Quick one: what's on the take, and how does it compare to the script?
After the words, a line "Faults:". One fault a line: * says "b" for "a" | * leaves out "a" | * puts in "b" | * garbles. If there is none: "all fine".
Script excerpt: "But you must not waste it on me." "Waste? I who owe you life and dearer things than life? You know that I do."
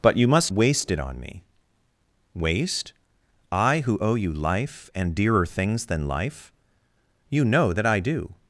"But you must waste it on me." "Waste? I who owe you life and dearer things than life? You know that I do."
Faults:
* leaves out "not"